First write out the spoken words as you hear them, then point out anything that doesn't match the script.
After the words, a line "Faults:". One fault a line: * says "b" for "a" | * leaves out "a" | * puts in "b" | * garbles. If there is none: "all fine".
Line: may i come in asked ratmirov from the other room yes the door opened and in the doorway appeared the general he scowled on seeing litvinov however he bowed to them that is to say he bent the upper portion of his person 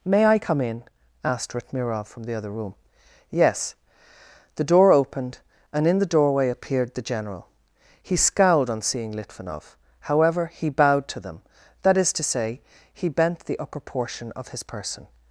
may i come in asked ratmirov from the other room yes the door opened and in the doorway appeared the general he scowled on seeing litvinov however he bowed to them that is to say he bent the upper portion of his person
Faults:
all fine